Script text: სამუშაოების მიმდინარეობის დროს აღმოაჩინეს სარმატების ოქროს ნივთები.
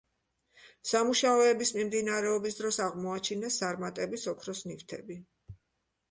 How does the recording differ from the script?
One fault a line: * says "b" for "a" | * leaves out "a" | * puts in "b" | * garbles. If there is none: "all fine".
all fine